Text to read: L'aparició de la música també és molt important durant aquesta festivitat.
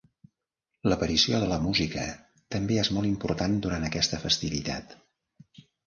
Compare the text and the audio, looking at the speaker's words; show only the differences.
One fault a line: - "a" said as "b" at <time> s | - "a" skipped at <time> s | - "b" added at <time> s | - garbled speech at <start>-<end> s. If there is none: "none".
none